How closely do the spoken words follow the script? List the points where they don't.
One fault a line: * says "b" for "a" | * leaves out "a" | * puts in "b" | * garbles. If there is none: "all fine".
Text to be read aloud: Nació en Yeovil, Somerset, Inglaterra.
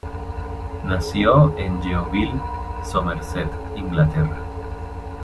all fine